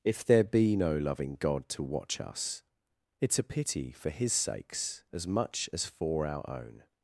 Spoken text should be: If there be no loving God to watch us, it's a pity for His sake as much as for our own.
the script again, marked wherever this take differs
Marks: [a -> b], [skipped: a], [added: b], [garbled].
If there be no loving God to watch us, it's a pity for His [sake -> sakes] as much as for our own.